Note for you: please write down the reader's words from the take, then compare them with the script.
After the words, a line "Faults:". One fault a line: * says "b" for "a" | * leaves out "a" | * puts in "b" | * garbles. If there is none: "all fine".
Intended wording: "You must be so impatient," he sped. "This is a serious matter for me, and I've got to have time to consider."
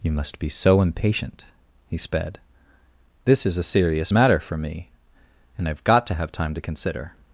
"You must be so impatient," he sped. "This is a serious matter for me, and I've got to have time to consider."
Faults:
all fine